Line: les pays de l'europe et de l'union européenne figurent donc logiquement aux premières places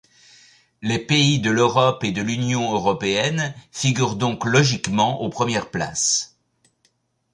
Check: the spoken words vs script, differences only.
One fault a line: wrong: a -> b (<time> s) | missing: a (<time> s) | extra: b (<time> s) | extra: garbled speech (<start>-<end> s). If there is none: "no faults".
no faults